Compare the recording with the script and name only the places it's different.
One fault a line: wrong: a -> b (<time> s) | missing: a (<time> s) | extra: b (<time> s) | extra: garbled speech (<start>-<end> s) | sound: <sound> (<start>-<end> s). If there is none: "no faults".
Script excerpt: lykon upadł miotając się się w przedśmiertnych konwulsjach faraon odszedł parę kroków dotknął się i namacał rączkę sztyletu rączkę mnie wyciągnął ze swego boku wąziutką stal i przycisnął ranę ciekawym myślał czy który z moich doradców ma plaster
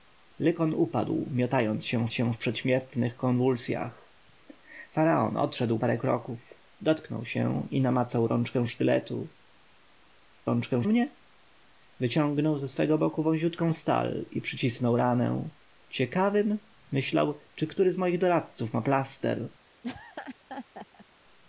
sound: laugh (19.8-21.1 s)